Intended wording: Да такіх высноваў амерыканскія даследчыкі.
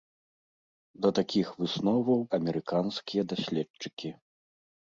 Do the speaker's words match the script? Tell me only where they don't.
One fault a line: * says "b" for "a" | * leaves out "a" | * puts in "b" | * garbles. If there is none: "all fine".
all fine